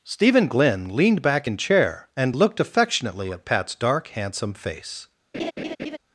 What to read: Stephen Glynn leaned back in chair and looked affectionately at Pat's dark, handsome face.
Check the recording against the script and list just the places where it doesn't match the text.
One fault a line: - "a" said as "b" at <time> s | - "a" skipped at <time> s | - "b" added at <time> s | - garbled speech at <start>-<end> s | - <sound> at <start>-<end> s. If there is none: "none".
- laugh at 5.3-6.0 s